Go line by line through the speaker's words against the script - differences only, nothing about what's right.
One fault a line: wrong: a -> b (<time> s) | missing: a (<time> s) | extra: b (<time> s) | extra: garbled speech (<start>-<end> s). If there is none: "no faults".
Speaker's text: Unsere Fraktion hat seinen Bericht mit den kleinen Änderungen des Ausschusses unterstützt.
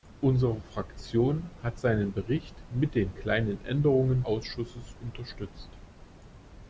missing: des (4.2 s)